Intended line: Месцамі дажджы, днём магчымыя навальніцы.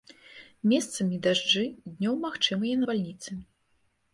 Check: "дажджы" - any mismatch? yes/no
no